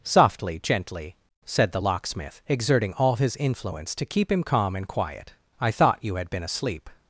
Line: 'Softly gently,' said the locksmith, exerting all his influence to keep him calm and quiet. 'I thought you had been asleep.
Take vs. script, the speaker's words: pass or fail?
pass